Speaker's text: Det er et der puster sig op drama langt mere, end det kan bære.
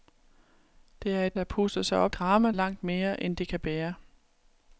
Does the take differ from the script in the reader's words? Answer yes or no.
no